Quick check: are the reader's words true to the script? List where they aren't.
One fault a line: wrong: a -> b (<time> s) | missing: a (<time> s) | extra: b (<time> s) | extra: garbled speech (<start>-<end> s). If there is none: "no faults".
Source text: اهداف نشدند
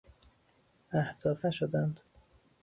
no faults